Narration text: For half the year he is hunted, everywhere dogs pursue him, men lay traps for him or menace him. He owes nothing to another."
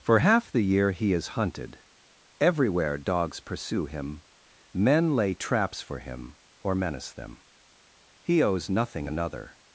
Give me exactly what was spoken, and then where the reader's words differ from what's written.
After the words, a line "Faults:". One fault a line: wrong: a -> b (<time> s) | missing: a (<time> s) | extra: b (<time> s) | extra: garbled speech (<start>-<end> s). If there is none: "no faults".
For half the year he is hunted, everywhere dogs pursue him, men lay traps for him or menace them. He owes nothing another."
Faults:
wrong: him -> them (7.1 s)
missing: to (9.1 s)